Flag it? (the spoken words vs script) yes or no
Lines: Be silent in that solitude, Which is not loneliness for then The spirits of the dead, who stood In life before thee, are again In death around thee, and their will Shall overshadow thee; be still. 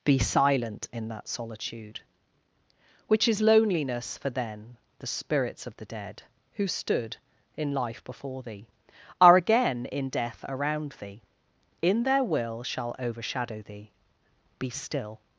yes